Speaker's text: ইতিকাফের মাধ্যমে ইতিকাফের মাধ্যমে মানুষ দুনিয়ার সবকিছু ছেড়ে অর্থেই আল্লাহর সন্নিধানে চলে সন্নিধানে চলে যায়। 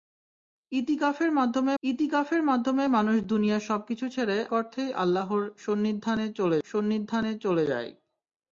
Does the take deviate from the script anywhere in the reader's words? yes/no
no